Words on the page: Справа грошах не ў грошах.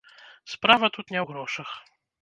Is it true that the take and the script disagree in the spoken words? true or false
true